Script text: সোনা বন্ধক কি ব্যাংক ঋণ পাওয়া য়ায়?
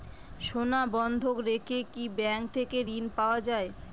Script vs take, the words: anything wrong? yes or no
yes